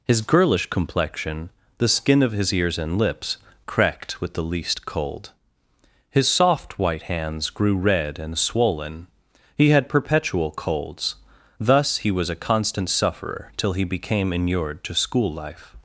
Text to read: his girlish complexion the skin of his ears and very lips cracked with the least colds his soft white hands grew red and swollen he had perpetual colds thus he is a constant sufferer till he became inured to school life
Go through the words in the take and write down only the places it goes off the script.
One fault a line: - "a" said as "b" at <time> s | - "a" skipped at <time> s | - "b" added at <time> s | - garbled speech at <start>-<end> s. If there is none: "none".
- "very" skipped at 3.0 s
- "colds" said as "cold" at 4.8 s
- "is" said as "was" at 12.1 s